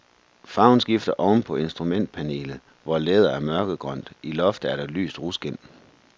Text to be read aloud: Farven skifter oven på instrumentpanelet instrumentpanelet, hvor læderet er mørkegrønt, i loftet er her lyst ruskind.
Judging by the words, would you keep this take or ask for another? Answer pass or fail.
fail